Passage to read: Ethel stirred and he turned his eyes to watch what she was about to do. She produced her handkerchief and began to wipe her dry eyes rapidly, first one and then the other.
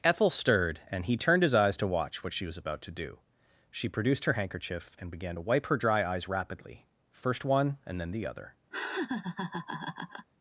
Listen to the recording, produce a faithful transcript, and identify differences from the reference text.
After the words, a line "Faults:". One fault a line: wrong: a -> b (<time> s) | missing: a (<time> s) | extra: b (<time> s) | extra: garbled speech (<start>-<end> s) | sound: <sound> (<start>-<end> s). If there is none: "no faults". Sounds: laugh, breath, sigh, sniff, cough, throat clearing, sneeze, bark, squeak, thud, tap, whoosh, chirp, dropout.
Ethel stirred and he turned his eyes to watch what she was about to do. She produced her handkerchief and began to wipe her dry eyes rapidly, first one and then the other.
Faults:
sound: laugh (8.7-10.3 s)